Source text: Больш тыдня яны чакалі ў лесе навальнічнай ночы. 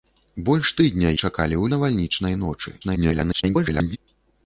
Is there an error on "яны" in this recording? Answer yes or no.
yes